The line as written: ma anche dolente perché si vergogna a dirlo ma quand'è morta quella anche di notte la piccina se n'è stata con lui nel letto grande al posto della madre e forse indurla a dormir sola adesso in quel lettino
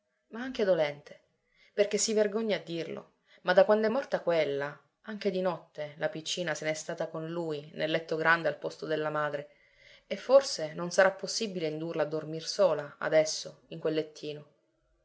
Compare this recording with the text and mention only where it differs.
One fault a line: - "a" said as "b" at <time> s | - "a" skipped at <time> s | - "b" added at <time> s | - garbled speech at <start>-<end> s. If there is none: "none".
- "da" added at 3.5 s
- "non sarà possibile" added at 10.7 s